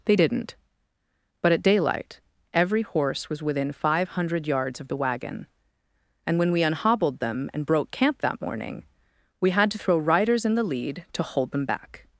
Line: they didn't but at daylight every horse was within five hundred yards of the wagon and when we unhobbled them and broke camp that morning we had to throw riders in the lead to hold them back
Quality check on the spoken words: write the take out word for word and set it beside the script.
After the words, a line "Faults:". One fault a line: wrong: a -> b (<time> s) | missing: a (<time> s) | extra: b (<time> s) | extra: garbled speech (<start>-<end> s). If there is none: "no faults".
they didn't but at daylight every horse was within five hundred yards of the wagon and when we unhobbled them and broke camp that morning we had to throw riders in the lead to hold them back
Faults:
no faults